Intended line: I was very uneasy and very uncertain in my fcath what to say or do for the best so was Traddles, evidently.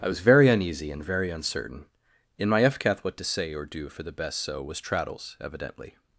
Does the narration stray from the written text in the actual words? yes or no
no